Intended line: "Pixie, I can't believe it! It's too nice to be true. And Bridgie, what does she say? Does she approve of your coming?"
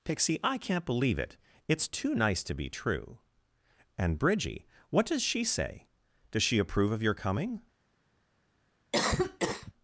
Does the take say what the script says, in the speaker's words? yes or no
yes